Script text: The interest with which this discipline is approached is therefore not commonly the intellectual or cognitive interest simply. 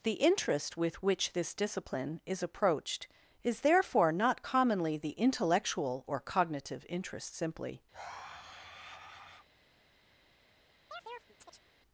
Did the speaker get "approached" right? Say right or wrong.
right